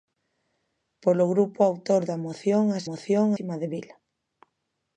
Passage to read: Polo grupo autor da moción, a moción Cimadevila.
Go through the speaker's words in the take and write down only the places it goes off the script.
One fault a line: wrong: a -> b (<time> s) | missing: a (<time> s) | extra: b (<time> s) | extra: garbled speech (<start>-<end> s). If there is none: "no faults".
no faults